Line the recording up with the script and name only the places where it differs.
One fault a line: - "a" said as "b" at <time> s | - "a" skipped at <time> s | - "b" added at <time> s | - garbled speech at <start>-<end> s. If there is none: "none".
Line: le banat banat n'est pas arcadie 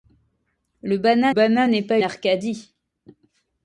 none